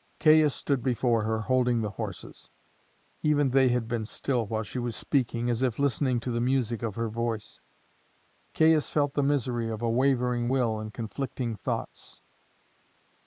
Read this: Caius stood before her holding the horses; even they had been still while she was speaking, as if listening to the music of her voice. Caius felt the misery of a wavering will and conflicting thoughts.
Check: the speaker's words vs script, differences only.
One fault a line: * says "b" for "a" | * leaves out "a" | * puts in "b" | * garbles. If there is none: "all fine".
all fine